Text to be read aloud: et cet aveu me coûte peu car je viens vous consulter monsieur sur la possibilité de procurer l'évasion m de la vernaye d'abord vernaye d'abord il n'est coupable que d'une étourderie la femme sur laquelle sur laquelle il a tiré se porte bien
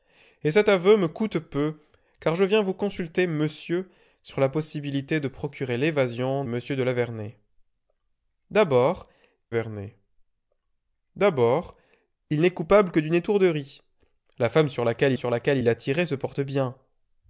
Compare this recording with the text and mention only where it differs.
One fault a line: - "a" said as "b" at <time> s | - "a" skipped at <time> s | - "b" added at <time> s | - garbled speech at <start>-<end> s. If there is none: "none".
none